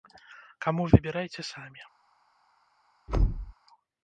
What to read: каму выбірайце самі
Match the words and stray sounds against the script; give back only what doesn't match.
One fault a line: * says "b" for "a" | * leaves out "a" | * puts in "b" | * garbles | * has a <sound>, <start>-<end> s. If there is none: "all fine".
* has a thud, 3.1-3.5 s